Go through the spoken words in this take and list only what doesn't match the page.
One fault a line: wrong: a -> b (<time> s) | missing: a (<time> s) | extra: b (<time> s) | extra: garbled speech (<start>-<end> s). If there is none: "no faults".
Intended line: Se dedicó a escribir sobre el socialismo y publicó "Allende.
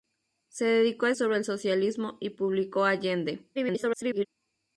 missing: escribir (1.1 s)
extra: garbled speech (3.5-4.3 s)